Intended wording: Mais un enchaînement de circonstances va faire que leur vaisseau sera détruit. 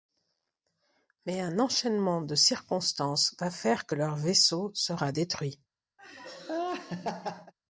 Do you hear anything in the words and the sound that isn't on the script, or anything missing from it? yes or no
yes